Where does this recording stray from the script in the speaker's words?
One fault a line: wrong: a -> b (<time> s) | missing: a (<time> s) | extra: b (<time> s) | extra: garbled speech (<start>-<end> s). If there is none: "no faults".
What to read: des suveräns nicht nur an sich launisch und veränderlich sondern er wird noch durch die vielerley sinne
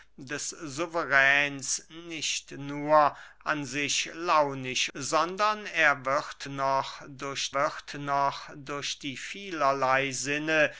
wrong: und veränderlich sondern er -> sondern er wird noch durch (4.9 s)